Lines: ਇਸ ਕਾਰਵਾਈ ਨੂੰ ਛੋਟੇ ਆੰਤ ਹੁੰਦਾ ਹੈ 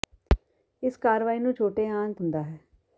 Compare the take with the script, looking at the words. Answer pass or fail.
pass